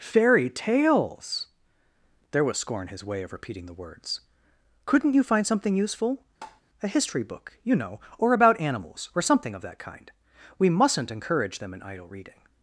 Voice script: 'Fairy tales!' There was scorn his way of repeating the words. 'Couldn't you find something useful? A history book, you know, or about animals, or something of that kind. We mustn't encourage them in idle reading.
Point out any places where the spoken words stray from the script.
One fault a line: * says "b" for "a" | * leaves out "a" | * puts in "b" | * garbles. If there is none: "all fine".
all fine